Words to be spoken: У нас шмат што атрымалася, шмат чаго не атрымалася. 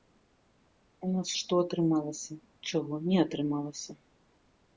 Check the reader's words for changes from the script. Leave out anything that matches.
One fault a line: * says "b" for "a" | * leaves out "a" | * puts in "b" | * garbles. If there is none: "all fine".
* leaves out "шмат"
* leaves out "шмат"